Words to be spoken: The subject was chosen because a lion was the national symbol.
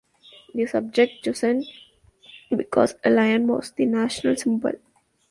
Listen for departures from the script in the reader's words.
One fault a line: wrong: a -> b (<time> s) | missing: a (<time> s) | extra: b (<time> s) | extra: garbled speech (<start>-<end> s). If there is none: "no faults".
missing: was (1.2 s)